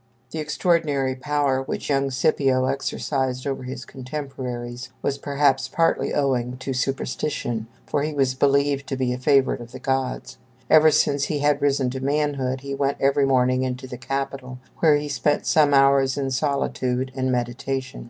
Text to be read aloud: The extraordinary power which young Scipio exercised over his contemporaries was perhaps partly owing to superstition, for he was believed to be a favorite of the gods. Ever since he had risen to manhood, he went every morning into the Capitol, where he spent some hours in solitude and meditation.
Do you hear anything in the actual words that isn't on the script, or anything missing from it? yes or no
no